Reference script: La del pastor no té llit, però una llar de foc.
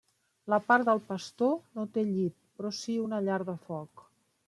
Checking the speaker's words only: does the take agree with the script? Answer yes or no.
no